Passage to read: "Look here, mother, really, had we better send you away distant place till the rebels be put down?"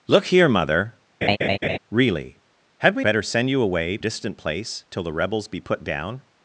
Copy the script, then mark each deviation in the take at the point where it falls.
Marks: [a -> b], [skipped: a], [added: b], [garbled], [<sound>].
"Look here, mother, [laugh] really, had we better send you away distant place till the rebels be put down?"